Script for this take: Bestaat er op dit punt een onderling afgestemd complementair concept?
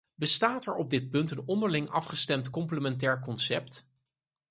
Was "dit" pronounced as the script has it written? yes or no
yes